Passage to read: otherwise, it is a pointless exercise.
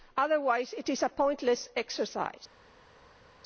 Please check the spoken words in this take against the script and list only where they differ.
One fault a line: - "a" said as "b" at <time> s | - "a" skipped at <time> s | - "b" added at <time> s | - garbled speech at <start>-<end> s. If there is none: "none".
none